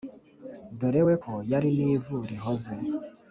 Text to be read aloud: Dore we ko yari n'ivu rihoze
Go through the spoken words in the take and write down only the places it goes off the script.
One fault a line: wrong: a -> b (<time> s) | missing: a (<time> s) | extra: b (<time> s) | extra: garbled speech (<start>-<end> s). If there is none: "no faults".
no faults